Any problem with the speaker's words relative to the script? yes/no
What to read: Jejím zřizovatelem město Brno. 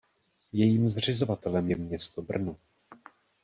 yes